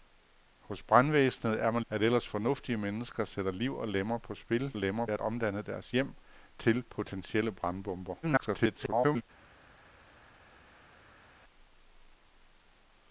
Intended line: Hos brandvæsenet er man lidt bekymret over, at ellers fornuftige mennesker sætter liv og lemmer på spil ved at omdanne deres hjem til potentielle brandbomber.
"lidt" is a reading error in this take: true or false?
true